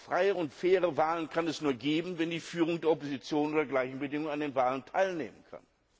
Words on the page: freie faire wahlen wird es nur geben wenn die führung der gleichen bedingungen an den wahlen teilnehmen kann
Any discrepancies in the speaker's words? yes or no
yes